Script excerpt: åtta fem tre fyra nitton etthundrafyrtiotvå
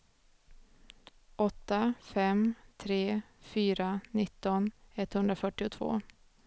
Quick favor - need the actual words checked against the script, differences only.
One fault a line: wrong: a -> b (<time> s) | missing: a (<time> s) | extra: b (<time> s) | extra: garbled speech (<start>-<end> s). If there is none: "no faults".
no faults